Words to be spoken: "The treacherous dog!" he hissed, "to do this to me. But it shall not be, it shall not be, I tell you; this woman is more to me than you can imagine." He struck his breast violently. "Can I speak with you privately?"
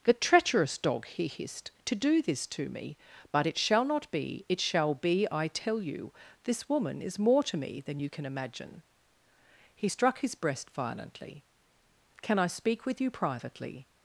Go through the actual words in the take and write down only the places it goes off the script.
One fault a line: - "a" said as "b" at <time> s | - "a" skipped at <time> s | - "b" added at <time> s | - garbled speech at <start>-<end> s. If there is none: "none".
- "not" skipped at 4.9 s